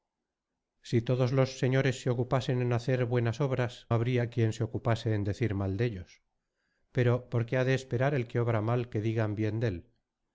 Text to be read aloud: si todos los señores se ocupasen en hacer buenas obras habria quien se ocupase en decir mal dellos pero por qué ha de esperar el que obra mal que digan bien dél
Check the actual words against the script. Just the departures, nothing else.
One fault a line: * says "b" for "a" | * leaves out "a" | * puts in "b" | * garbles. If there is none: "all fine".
all fine